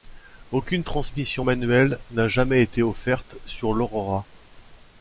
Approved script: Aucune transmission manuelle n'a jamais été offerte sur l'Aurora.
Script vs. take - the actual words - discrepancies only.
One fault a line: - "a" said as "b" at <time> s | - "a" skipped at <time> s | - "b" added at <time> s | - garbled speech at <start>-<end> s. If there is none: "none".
none